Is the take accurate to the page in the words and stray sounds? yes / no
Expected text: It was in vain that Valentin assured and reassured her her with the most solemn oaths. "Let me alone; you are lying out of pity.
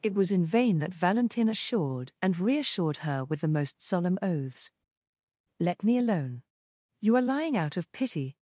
no